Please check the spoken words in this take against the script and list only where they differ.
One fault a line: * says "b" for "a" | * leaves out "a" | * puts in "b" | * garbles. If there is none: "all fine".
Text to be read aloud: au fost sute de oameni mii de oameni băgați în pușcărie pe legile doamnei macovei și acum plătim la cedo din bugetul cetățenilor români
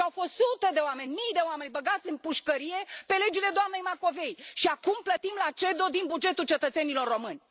all fine